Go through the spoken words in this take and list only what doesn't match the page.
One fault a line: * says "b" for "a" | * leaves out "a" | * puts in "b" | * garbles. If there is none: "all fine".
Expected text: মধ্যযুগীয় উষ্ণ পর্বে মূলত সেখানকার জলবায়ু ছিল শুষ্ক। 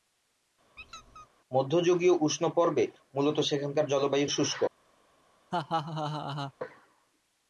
* leaves out "ছিল"